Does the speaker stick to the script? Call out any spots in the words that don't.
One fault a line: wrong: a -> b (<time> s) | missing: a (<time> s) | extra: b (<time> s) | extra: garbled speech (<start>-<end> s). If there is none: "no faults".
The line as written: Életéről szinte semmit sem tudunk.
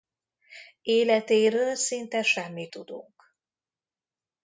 missing: sem (2.7 s)